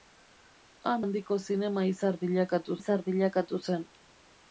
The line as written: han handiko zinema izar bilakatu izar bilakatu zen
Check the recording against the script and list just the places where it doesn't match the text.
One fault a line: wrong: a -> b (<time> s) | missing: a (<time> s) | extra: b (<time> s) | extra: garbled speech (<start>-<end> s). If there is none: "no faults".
no faults